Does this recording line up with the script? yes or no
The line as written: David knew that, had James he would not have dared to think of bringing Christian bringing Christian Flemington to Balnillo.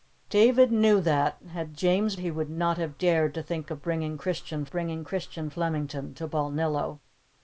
yes